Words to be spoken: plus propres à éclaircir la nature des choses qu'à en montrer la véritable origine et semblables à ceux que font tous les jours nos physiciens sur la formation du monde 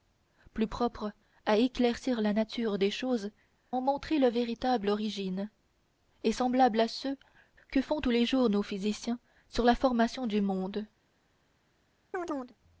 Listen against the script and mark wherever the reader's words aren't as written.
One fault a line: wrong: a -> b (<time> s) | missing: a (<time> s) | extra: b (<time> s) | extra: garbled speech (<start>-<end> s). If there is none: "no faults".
missing: qu'à (3.3 s)